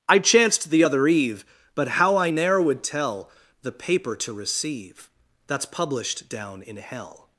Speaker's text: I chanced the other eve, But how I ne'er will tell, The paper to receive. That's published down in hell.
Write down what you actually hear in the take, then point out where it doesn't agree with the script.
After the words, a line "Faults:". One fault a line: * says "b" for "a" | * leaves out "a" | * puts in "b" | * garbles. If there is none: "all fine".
I chanced the other eve, But how I ne'er would tell, The paper to receive. That's published down in hell.
Faults:
* says "would" for "will"